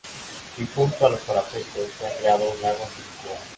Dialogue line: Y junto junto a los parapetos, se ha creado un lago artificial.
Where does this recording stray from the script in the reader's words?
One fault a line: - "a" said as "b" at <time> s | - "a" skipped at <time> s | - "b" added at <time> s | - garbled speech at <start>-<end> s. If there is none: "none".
- "junto" skipped at 1.1 s